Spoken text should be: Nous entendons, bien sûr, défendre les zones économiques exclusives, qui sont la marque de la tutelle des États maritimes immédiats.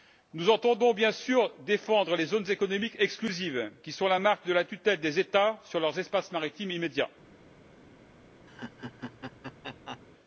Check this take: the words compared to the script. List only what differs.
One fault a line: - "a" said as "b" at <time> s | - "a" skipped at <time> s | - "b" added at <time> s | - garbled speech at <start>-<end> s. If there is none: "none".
- "sur leurs espaces" added at 5.7 s